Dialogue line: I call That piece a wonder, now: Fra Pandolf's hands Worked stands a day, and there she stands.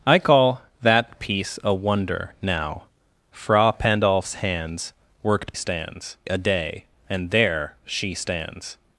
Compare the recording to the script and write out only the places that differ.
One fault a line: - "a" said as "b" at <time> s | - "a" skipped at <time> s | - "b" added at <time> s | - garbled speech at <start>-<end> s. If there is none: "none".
none